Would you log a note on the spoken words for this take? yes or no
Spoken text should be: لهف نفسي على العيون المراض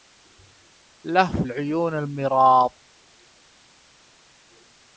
yes